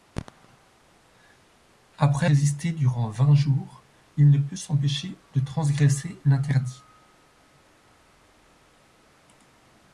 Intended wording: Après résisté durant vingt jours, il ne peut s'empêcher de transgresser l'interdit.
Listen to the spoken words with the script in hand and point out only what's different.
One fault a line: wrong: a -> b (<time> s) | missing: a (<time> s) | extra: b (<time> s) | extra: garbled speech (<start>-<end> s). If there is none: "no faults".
no faults